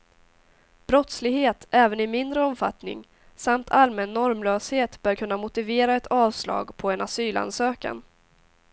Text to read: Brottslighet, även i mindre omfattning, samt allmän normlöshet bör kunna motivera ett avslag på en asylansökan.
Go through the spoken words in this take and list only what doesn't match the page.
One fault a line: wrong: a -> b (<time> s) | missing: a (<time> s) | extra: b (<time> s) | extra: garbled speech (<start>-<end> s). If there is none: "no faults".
no faults